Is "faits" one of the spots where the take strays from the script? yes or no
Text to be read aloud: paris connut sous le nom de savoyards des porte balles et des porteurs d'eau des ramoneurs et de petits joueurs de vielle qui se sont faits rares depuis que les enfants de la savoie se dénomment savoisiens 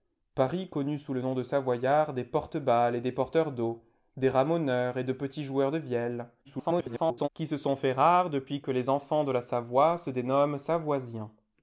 no